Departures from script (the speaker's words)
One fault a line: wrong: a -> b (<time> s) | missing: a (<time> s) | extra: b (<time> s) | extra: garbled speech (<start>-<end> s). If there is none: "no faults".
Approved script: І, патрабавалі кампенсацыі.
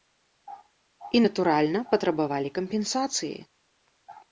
extra: натуральна (1.2 s)